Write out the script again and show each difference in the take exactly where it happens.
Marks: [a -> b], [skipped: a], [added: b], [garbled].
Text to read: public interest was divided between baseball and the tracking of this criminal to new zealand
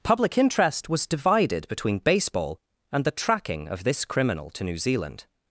public interest was divided between baseball and the tracking of this criminal to new zealand